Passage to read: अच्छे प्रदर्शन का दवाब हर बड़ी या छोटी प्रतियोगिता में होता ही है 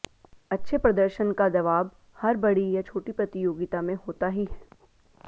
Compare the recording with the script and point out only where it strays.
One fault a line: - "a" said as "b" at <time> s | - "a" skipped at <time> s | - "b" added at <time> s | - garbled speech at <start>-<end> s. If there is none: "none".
none